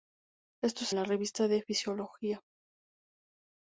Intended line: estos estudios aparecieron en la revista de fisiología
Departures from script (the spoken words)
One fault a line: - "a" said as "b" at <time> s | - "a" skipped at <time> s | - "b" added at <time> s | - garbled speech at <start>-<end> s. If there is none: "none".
- "estudios aparecieron en" skipped at 0.9 s